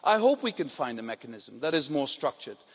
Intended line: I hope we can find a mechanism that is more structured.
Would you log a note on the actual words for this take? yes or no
no